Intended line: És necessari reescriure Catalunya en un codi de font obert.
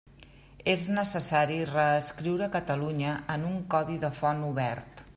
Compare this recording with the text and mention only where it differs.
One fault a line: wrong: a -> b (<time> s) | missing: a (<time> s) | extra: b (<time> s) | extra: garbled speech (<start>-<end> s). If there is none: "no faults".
no faults